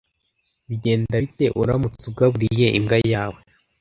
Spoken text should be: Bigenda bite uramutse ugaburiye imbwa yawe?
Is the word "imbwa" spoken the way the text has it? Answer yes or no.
yes